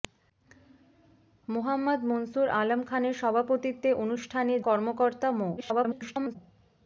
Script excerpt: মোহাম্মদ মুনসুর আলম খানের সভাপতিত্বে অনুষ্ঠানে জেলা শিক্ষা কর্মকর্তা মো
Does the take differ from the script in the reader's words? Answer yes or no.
yes